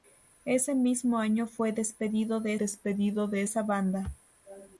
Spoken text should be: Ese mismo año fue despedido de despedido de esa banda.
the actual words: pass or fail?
pass